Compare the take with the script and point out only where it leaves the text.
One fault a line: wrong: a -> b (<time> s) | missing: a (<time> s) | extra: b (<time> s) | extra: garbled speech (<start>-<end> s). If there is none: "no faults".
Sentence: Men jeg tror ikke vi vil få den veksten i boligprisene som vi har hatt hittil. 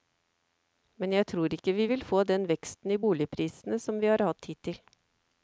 no faults